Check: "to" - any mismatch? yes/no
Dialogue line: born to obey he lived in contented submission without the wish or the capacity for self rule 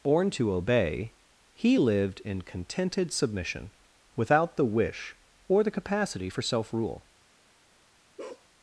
no